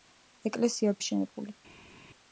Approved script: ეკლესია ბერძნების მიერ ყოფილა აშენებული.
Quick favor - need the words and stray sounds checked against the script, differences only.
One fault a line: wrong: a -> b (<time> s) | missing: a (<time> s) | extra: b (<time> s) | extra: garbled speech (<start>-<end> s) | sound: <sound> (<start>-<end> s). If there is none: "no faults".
missing: ბერძნების მიერ ყოფილა (0.9 s)